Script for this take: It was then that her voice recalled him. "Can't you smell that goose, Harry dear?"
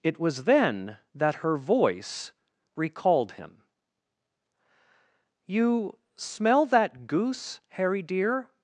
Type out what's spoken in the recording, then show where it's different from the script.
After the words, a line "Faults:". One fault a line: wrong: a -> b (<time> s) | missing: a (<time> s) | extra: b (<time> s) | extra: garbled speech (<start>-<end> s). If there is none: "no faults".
It was then that her voice recalled him. "you smell that goose, Harry dear?"
Faults:
missing: Can't (3.6 s)